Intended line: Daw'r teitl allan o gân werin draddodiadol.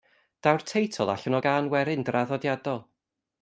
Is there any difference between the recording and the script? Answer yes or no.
no